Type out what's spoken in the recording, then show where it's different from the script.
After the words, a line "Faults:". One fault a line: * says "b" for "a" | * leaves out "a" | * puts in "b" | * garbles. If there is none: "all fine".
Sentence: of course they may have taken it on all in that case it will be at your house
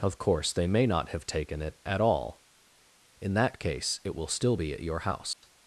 of course they may not have taken it at all in that case it will still be at your house
Faults:
* puts in "not"
* says "at" for "on"
* puts in "still"